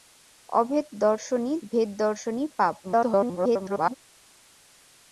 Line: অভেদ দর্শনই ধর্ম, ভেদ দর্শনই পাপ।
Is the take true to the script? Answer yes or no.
no